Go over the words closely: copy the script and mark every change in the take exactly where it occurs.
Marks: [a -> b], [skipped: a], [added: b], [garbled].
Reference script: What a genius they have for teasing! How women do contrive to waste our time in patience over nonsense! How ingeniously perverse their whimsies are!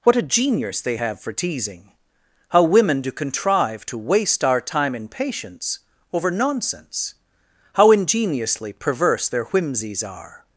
What a genius they have for teasing! How women do contrive to waste our time in patience over nonsense! How ingeniously perverse their whimsies are!